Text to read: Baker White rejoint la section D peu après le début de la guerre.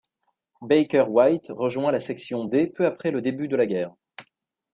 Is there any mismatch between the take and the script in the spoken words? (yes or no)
no